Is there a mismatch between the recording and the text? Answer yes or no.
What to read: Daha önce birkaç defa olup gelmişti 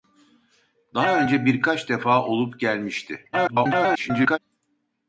yes